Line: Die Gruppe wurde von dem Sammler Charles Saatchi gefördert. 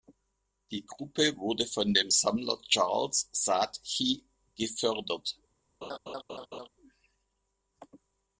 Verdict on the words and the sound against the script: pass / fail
fail